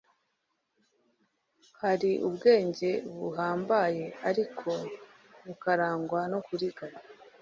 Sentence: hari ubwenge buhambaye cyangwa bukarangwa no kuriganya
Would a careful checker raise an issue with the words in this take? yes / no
yes